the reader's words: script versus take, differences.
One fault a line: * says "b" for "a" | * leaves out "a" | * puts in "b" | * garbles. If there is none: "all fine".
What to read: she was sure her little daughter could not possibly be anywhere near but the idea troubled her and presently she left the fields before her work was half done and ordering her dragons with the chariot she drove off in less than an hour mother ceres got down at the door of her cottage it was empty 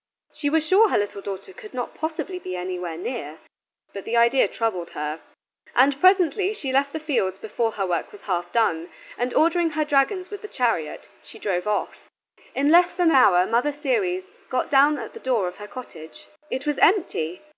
* leaves out "an"